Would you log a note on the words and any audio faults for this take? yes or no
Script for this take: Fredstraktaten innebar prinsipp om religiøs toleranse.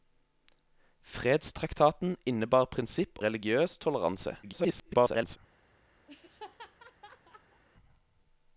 yes